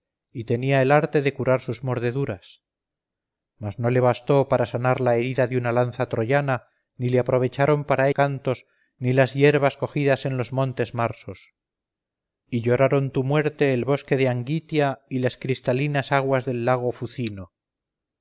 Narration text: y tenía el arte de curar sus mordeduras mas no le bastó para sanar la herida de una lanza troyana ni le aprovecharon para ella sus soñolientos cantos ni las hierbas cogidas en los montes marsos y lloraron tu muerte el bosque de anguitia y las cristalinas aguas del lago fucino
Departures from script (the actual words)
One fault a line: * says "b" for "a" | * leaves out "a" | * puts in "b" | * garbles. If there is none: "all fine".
* leaves out "ella sus soñolientos"